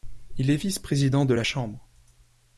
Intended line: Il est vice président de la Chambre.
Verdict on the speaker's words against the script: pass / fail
pass